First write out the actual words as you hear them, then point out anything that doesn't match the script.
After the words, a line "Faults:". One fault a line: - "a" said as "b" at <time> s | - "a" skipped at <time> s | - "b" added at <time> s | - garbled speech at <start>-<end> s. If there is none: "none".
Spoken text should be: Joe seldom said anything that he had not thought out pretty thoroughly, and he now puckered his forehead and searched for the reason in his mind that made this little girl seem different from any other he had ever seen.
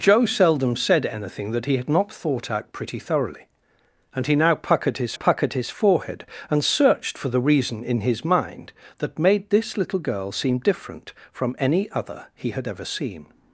Joe seldom said anything that he had not thought out pretty thoroughly, and he now puckered his puckered his forehead and searched for the reason in his mind that made this little girl seem different from any other he had ever seen.
Faults:
- "puckered his" added at 5.1 s